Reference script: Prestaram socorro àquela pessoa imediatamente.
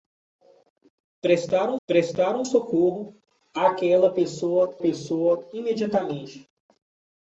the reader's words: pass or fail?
fail